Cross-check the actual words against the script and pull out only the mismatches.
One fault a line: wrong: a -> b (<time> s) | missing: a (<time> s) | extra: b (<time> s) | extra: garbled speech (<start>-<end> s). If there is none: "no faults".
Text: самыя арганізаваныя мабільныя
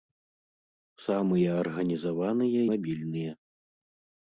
no faults